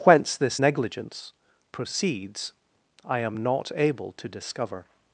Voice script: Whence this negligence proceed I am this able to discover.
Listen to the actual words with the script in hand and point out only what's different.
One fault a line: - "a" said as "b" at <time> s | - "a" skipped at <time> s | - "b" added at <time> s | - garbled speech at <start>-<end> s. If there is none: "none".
- "proceed" said as "proceeds" at 1.7 s
- "this" said as "not" at 3.4 s